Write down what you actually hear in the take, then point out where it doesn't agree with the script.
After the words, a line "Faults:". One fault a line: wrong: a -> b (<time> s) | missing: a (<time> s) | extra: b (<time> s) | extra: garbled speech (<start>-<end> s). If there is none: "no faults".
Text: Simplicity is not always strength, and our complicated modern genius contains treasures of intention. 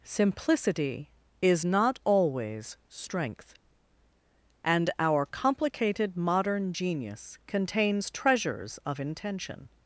Simplicity is not always strength, and our complicated modern genius contains treasures of intention.
Faults:
no faults